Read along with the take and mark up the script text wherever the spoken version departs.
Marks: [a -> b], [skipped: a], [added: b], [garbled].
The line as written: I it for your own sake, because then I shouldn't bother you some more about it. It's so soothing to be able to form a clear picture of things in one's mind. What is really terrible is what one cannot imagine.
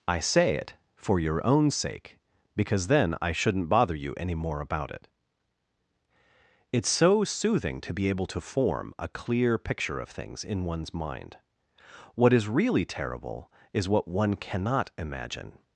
I [added: say] it for your own sake, because then I shouldn't bother you [some -> any] more about it. It's so soothing to be able to form a clear picture of things in one's mind. What is really terrible is what one cannot imagine.